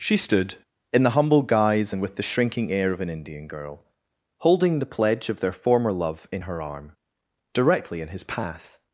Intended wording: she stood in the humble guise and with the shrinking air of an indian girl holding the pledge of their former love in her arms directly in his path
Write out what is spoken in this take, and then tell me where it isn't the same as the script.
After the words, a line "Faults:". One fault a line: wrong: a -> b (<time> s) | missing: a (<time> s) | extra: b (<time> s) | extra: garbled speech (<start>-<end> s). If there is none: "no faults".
she stood in the humble guise and with the shrinking air of an indian girl holding the pledge of their former love in her arm directly in his path
Faults:
wrong: arms -> arm (6.6 s)